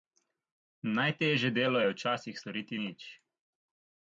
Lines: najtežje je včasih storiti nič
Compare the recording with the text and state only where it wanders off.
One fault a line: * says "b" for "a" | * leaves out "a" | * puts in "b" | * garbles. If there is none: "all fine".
* puts in "delo"